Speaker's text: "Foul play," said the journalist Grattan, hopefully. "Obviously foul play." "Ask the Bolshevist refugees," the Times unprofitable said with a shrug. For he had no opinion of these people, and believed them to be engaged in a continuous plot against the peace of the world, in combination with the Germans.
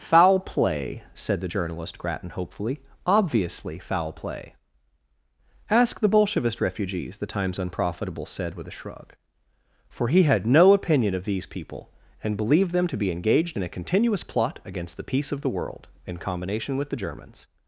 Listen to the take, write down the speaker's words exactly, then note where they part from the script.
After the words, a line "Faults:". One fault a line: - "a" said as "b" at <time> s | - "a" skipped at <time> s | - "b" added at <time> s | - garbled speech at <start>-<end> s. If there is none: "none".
"Foul play," said the journalist Grattan, hopefully. "Obviously foul play." "Ask the Bolshevist refugees," the Times unprofitable said with a shrug. For he had no opinion of these people, and believed them to be engaged in a continuous plot against the peace of the world, in combination with the Germans.
Faults:
none